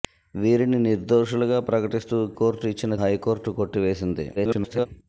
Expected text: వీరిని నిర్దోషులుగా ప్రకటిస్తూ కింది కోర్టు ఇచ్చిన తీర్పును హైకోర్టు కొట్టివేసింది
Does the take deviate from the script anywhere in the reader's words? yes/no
yes